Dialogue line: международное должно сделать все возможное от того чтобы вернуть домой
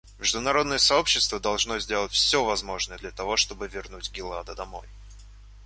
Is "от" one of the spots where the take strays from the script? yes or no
yes